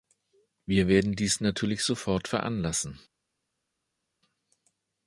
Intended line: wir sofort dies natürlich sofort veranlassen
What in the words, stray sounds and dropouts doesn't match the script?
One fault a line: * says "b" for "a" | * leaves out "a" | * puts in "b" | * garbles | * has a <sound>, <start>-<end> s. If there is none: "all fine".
* says "werden" for "sofort"